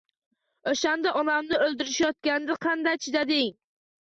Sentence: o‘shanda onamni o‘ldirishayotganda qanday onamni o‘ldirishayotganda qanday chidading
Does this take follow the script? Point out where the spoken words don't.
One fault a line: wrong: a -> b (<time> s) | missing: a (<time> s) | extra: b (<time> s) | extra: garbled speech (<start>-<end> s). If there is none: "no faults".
missing: onamni o‘ldirishayotganda qanday (3.0 s)